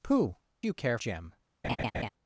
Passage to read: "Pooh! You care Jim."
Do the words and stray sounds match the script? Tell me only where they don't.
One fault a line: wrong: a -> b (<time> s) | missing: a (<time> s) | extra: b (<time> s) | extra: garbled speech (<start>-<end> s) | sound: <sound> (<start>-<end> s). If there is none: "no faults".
sound: laugh (1.6-2.1 s)